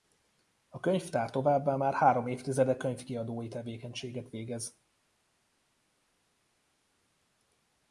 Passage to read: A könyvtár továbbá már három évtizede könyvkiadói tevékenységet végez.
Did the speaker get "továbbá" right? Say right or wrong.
right